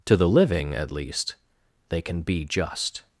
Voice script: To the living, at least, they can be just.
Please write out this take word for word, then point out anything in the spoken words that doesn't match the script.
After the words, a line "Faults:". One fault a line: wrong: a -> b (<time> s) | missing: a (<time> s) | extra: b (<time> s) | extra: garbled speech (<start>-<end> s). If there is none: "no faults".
To the living, at least, they can be just.
Faults:
no faults